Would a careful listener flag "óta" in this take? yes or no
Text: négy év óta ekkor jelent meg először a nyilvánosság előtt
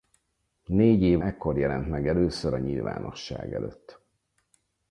yes